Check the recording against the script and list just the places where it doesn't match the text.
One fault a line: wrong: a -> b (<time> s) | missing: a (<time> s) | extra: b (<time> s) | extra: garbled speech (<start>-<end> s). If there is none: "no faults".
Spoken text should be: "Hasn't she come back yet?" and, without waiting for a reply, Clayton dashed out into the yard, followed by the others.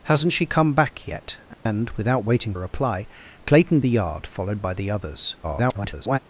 missing: for (2.5 s)
missing: dashed out into (3.8 s)
extra: garbled speech (5.4-6.2 s)